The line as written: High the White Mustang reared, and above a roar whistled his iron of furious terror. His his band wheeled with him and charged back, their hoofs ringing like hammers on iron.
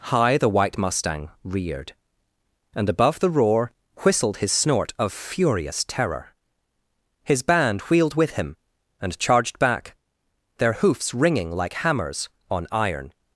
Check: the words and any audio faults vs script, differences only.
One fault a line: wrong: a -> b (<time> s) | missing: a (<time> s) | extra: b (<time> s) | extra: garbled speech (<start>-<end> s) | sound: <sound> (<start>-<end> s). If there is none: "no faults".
wrong: a -> the (3.2 s)
wrong: iron -> snort (4.5 s)
missing: his (7.4 s)